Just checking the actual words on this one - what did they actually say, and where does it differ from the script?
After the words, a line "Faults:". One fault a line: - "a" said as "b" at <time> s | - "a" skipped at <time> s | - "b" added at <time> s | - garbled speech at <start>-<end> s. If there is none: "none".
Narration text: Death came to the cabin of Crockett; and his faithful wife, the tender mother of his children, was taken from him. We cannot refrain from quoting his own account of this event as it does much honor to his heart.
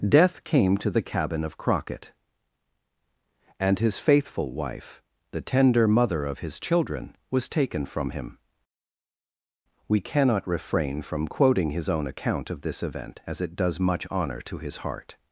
Death came to the cabin of Crockett; and his faithful wife, the tender mother of his children, was taken from him. We cannot refrain from quoting his own account of this event as it does much honor to his heart.
Faults:
none